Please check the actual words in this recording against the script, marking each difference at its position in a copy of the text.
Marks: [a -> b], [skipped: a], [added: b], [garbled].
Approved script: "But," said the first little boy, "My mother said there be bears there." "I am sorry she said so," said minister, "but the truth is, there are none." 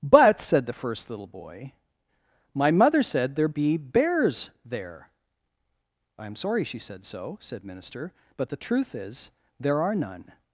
"But," said the first little boy, "My mother said there be bears there." "I am sorry she said so," said minister, "but the truth is, there are none."